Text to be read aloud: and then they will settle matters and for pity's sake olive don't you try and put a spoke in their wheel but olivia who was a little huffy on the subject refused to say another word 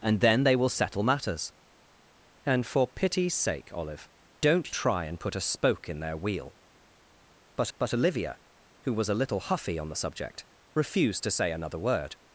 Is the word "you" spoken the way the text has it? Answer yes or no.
no